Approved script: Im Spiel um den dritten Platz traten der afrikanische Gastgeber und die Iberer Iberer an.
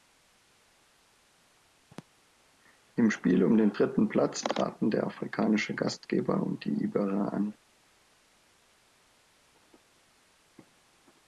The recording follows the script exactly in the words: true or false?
false